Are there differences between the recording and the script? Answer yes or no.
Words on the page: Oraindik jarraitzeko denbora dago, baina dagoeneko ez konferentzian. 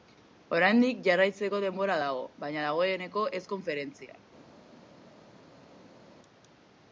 no